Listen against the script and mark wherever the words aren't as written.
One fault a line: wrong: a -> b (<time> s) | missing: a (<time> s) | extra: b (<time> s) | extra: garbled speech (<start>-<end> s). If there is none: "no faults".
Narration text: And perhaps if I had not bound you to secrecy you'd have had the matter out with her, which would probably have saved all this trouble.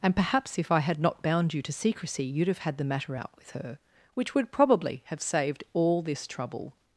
no faults